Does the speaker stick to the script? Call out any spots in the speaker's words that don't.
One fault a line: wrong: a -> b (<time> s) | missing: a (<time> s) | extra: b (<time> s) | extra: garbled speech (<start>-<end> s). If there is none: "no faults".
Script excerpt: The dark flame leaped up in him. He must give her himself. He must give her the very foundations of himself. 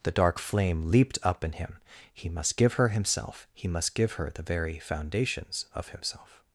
no faults